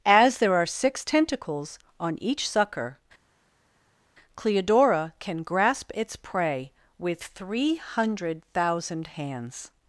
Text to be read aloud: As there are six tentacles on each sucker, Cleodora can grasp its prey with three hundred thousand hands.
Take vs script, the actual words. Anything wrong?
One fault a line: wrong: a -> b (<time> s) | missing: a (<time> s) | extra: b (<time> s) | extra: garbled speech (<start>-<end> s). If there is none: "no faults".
no faults